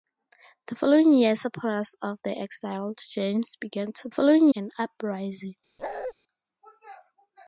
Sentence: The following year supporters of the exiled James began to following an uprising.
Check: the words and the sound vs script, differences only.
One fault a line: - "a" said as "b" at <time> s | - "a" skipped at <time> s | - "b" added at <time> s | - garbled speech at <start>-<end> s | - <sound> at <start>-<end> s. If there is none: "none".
- bark at 5.8-6.1 s